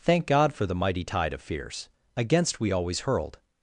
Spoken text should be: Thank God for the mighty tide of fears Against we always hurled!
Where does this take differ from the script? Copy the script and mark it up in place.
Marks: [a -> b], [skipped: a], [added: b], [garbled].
Thank God for the mighty tide of fears Against we always hurled!